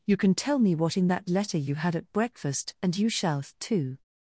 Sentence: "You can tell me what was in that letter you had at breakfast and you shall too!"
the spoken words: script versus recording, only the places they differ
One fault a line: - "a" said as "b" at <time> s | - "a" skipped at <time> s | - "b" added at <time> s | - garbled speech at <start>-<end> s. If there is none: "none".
- "was" skipped at 1.0 s